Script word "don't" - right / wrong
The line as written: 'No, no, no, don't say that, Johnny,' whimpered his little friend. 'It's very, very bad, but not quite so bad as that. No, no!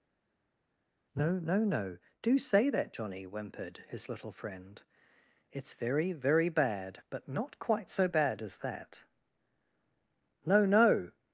wrong